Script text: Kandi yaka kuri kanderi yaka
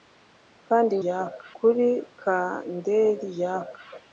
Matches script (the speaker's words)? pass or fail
pass